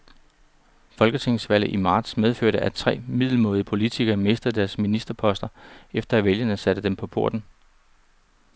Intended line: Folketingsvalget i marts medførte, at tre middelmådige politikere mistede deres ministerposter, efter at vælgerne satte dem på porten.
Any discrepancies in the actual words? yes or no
no